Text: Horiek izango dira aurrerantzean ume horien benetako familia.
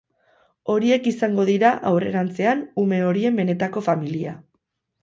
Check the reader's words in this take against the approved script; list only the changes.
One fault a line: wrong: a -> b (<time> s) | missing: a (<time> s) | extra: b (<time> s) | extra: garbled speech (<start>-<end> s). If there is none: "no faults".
no faults